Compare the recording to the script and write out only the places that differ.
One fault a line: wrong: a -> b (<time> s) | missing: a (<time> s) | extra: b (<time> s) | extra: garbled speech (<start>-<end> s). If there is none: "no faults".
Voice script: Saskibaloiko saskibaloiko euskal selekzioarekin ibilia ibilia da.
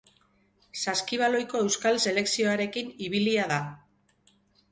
missing: saskibaloiko (1.6 s)
missing: ibilia (3.5 s)